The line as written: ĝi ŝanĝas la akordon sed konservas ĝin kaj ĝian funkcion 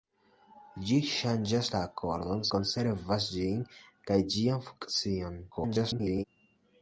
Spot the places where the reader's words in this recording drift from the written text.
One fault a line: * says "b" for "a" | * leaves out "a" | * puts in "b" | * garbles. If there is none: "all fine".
* leaves out "sed"
* garbles